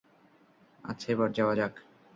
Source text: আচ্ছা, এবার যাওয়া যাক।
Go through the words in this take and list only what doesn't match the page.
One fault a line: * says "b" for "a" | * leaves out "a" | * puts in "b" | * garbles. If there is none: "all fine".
all fine